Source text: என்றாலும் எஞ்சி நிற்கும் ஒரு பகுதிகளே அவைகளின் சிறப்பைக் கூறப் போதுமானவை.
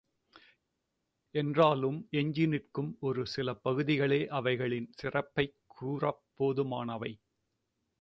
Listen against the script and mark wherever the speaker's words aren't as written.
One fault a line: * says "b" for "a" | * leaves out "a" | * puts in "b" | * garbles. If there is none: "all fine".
* puts in "சில"